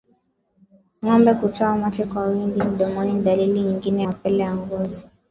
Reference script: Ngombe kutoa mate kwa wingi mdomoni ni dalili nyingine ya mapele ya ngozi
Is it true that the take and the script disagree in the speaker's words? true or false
true